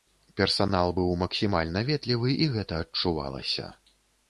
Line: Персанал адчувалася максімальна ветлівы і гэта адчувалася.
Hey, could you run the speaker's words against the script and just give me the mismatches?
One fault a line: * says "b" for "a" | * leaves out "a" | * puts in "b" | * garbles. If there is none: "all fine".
* says "быў" for "адчувалася"